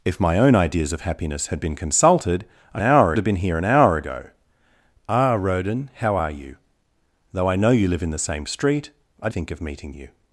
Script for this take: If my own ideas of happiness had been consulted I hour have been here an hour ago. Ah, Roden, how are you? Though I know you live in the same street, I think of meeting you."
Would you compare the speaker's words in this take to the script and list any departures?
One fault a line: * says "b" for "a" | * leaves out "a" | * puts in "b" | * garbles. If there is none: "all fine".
all fine